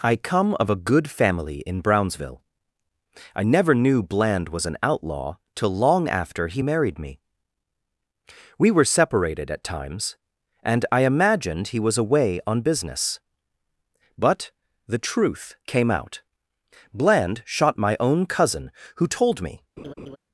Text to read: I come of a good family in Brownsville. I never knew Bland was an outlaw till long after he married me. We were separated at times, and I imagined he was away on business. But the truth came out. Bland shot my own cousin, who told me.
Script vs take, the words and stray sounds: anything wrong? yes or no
yes